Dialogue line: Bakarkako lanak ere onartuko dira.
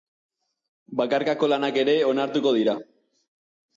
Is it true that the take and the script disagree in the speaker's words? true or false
false